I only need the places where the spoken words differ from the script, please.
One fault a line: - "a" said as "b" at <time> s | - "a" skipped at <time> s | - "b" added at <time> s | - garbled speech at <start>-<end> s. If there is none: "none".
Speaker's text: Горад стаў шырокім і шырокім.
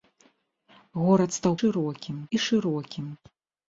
none